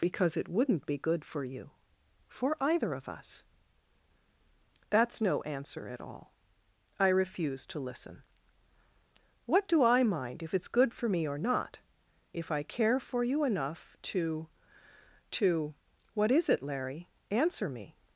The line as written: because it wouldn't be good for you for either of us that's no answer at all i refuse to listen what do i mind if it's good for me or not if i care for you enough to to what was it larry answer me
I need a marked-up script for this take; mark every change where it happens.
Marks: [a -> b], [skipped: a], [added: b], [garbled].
because it wouldn't be good for you for either of us that's no answer at all i refuse to listen what do i mind if it's good for me or not if i care for you enough to to what [was -> is] it larry answer me